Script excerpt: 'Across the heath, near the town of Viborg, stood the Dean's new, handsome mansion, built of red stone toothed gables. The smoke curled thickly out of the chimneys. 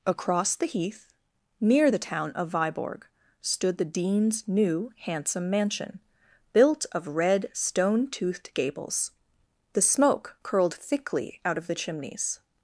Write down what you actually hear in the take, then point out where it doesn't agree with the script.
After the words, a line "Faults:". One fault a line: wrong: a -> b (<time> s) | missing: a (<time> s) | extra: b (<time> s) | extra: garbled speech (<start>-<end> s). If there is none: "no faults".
'Across the heath, near the town of Viborg, stood the Dean's new, handsome mansion, built of red stone toothed gables. The smoke curled thickly out of the chimneys.
Faults:
no faults